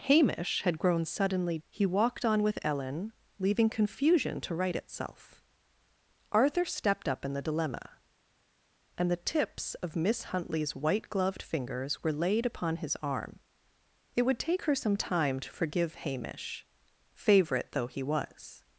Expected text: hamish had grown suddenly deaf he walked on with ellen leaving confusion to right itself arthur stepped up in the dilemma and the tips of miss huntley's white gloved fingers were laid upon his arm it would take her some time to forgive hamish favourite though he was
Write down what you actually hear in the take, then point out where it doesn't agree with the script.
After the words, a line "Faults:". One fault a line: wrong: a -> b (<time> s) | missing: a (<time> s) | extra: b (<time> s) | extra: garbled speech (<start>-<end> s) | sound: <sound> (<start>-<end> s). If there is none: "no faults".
hamish had grown suddenly he walked on with ellen leaving confusion to right itself arthur stepped up in the dilemma and the tips of miss huntley's white gloved fingers were laid upon his arm it would take her some time to forgive hamish favourite though he was
Faults:
missing: deaf (1.6 s)